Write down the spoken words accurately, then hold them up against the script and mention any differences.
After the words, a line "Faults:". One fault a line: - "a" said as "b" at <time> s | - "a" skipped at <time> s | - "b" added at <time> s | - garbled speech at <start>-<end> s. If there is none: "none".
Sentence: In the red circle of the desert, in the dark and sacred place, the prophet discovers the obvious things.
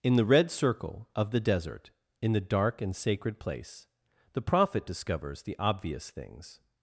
In the red circle of the desert, in the dark and sacred place, the prophet discovers the obvious things.
Faults:
none